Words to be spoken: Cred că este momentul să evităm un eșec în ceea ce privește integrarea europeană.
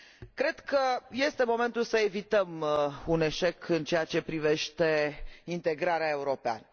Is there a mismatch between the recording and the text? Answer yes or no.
no